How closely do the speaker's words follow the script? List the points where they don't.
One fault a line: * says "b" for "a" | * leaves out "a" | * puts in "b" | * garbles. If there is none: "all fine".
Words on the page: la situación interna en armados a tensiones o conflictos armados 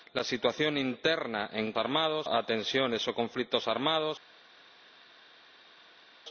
all fine